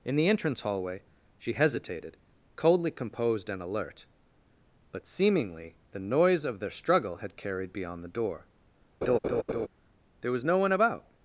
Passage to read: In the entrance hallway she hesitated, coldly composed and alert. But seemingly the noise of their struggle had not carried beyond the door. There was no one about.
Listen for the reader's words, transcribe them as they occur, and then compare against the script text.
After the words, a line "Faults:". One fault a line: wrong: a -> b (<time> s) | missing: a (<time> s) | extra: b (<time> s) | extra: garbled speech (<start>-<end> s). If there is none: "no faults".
In the entrance hallway she hesitated, coldly composed and alert. But seemingly the noise of their struggle had carried beyond the door. There was no one about.
Faults:
missing: not (7.4 s)